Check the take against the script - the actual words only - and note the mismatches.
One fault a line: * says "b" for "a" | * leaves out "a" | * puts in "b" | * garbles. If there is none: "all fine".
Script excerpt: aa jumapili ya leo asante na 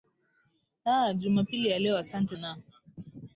all fine